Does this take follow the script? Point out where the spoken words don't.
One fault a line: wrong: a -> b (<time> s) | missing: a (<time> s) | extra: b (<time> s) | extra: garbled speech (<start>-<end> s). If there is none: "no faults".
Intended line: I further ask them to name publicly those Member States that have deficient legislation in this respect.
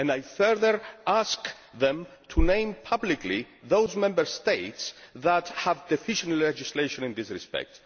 no faults